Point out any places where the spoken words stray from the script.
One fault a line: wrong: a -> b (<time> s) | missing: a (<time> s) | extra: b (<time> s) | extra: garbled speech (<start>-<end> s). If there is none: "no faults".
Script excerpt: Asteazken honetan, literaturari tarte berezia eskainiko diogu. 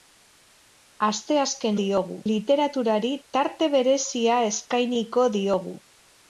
wrong: honetan -> diogu (1.8 s)